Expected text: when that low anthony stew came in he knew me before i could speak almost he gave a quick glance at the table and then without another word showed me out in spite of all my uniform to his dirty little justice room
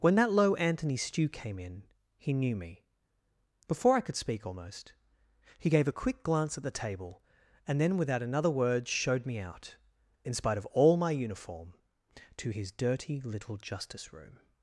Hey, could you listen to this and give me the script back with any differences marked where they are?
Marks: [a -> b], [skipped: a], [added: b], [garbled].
when that low anthony stew came in he knew me before i could speak almost he gave a quick glance at the table and then without another word showed me out in spite of all my uniform to his dirty little justice room